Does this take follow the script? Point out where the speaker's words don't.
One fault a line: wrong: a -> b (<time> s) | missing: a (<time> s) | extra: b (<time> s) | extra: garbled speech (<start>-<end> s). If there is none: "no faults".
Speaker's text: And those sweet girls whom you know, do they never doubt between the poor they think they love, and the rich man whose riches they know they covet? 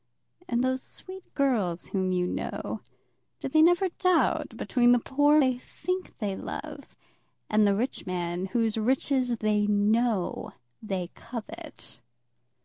no faults